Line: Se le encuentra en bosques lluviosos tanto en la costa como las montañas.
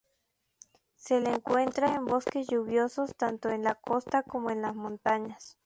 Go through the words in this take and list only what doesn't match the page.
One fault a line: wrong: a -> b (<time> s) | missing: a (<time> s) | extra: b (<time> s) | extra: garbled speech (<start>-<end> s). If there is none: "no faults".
extra: en (4.5 s)